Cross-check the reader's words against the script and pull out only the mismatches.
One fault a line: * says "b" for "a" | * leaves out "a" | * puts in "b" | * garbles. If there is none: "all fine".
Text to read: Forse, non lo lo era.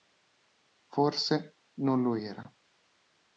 * leaves out "lo"